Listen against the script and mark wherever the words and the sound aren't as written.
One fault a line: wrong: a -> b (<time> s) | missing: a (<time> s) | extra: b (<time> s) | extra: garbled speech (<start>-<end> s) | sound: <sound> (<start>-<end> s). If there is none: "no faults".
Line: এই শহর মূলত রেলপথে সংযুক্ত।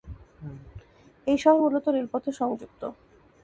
no faults